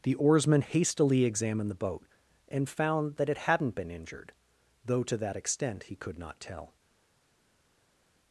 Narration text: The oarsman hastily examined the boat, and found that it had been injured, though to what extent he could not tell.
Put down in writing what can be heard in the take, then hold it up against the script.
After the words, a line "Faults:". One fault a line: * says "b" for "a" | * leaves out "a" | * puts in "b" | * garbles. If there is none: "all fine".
The oarsman hastily examined the boat, and found that it hadn't been injured, though to that extent he could not tell.
Faults:
* says "hadn't" for "had"
* says "that" for "what"